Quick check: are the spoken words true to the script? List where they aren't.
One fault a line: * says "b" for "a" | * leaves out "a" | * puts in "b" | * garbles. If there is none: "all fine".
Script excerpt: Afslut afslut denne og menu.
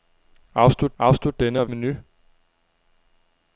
all fine